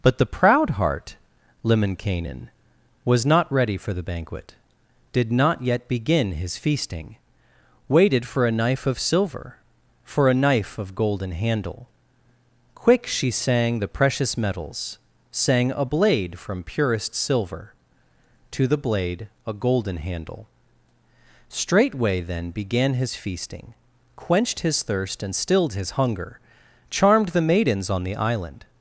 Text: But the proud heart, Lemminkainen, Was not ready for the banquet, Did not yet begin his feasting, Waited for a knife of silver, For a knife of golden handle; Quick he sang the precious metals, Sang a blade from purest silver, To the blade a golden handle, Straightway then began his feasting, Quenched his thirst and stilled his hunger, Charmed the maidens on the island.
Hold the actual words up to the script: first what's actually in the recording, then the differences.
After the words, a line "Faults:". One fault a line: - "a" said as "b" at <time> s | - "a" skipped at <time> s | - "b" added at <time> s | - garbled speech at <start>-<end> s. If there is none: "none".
But the proud heart, Lemminkainen, Was not ready for the banquet, Did not yet begin his feasting, Waited for a knife of silver, For a knife of golden handle; Quick she sang the precious metals, Sang a blade from purest silver, To the blade a golden handle, Straightway then began his feasting, Quenched his thirst and stilled his hunger, Charmed the maidens on the island.
Faults:
- "he" said as "she" at 13.1 s